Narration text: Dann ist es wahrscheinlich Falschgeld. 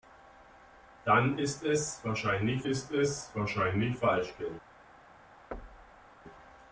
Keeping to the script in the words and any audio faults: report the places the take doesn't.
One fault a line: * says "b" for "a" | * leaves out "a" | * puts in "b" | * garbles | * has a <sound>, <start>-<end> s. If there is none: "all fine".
* puts in "ist es wahrscheinlich"
* has a thud, 5.5-6.1 s